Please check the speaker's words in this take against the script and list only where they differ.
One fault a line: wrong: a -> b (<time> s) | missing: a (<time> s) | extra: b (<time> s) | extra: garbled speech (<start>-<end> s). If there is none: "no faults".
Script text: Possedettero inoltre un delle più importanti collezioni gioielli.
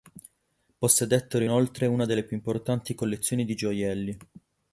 wrong: un -> una (1.9 s)
extra: di (3.4 s)